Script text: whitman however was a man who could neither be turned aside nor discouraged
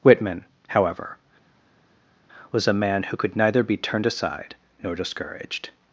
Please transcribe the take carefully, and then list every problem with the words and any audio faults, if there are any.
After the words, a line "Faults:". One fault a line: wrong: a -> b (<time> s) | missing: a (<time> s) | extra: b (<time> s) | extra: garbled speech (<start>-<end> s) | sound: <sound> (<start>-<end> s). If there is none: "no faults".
whitman however was a man who could neither be turned aside nor discouraged
Faults:
no faults